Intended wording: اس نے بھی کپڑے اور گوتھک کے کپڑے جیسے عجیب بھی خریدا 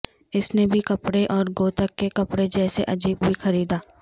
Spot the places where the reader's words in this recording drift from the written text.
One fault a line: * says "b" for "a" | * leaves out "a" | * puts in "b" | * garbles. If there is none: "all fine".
all fine